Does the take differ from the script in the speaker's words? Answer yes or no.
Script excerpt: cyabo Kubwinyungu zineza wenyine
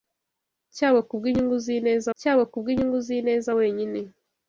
yes